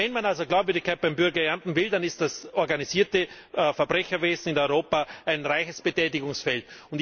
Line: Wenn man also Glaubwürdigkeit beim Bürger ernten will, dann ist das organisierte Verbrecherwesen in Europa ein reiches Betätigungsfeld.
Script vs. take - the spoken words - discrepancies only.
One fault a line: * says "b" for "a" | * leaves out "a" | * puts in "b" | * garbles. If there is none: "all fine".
all fine